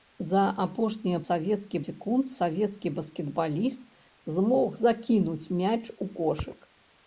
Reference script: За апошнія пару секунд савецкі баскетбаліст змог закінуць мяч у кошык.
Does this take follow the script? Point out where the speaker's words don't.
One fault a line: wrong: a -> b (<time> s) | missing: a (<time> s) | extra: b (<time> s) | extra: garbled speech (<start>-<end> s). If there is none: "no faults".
wrong: пару -> савецкі (1.2 s)